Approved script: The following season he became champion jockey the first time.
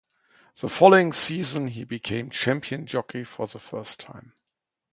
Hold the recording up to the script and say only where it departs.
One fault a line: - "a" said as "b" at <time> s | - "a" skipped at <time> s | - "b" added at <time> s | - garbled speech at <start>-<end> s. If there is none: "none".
- "for" added at 3.2 s